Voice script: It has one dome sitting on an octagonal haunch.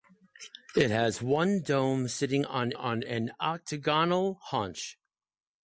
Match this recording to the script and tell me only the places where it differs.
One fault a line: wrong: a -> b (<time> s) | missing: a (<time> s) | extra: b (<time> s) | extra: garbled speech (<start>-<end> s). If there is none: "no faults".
extra: on (2.7 s)